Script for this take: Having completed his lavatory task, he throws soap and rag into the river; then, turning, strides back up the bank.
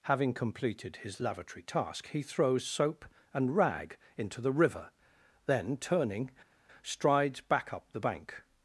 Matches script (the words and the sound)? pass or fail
pass